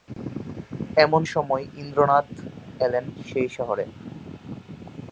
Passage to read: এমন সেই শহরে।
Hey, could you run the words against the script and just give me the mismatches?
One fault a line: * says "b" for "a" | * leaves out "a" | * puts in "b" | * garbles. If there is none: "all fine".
* puts in "সময় ইন্দ্রনাথ এলেন"